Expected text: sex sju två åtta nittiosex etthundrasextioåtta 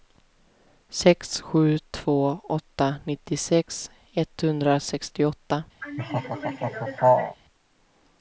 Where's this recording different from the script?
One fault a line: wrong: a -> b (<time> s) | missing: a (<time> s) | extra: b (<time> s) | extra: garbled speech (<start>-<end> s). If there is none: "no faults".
no faults